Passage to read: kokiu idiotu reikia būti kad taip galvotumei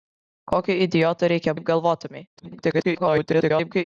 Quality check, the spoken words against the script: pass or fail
fail